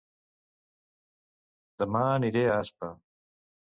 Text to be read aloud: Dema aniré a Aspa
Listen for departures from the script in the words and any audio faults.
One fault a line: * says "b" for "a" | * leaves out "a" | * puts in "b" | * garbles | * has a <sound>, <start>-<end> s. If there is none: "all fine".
all fine